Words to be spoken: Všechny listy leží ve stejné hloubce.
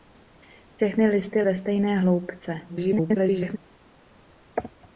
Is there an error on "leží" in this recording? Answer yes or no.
yes